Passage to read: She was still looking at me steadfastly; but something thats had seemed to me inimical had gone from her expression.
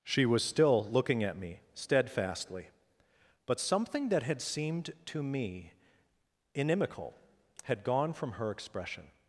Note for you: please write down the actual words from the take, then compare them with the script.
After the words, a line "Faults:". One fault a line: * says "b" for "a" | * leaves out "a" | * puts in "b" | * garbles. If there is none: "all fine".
She was still looking at me steadfastly; but something that had seemed to me inimical had gone from her expression.
Faults:
* says "that" for "thats"